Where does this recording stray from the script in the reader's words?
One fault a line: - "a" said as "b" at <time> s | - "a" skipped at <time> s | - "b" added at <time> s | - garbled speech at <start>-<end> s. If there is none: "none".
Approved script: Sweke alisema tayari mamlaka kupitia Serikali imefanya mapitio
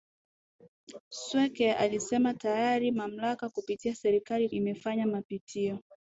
none